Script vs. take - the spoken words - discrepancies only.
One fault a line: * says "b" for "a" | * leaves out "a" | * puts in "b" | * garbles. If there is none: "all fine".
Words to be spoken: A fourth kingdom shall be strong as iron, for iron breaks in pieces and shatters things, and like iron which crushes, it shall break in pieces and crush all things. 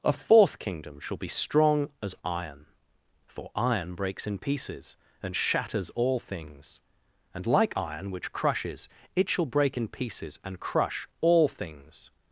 * puts in "all"